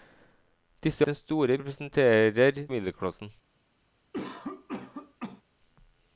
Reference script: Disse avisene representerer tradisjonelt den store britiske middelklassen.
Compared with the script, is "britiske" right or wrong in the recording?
wrong